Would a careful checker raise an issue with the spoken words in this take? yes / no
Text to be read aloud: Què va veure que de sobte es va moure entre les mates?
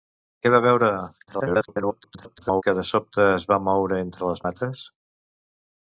yes